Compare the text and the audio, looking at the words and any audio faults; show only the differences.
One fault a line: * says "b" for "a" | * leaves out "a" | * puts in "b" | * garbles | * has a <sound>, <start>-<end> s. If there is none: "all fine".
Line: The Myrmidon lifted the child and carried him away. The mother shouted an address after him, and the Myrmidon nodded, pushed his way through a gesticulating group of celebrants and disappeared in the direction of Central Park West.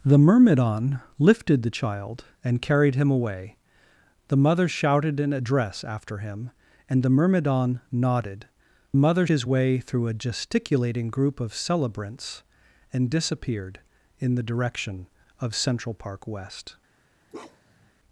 * says "mother" for "pushed"
* has a bark, 17.3-17.9 s